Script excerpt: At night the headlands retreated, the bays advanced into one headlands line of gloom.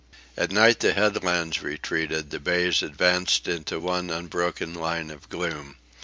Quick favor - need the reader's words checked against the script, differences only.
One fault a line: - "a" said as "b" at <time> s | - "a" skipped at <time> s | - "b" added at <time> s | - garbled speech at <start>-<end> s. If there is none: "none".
- "headlands" said as "unbroken" at 4.1 s